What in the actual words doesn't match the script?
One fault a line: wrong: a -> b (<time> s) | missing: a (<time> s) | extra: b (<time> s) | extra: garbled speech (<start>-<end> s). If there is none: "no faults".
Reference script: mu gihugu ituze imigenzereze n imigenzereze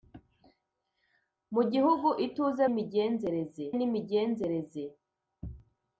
no faults